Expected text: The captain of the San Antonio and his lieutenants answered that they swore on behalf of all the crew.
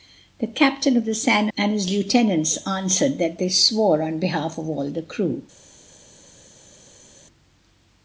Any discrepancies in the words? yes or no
yes